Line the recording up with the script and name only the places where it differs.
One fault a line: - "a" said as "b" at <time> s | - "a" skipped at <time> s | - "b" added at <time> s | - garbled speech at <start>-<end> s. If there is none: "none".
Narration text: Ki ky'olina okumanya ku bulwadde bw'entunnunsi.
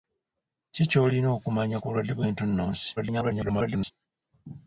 - garbled speech at 3.0-3.9 s